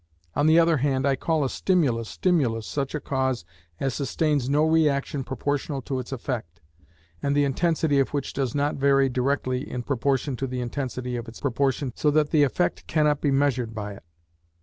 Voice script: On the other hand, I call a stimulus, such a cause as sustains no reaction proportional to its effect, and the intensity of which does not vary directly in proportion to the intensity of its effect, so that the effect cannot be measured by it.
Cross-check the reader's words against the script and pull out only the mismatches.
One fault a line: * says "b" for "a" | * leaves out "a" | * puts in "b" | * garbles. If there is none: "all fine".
* puts in "stimulus"
* says "proportion" for "effect"